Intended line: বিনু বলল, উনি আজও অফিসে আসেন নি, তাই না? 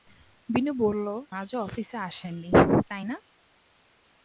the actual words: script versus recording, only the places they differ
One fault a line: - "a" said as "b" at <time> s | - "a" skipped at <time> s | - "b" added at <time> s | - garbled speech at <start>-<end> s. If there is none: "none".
- "উনি" skipped at 1.1 s